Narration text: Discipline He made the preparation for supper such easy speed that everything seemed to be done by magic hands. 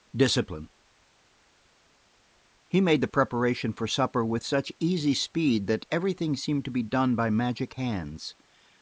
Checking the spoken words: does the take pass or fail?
fail